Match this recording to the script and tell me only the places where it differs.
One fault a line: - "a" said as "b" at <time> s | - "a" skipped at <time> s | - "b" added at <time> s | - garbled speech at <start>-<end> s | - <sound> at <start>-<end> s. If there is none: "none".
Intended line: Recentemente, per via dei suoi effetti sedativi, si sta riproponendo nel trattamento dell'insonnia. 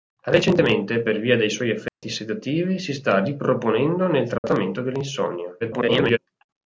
- dropout at 1.9-2.0 s
- dropout at 4.4-4.4 s
- garbled speech at 5.6-6.2 s